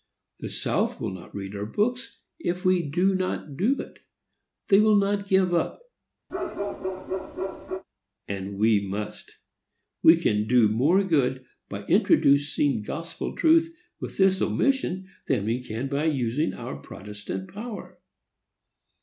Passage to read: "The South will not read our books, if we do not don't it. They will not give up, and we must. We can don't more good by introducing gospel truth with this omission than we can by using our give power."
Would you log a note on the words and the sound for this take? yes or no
yes